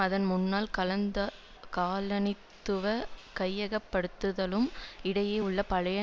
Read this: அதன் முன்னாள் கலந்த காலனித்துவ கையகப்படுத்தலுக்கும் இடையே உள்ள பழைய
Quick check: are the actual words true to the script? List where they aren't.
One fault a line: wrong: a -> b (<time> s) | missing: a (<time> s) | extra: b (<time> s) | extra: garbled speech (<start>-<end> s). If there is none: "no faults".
no faults